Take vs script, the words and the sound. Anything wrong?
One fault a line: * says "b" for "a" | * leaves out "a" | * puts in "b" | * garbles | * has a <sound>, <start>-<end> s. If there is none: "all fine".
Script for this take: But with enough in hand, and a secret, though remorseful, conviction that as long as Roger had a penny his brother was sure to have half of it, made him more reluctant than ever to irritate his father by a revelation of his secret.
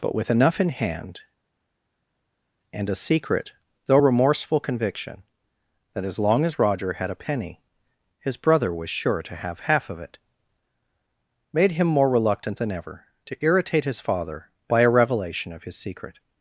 all fine